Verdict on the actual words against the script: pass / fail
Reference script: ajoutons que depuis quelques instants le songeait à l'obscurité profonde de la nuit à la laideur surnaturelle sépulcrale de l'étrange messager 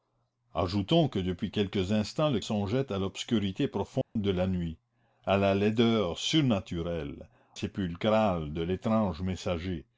pass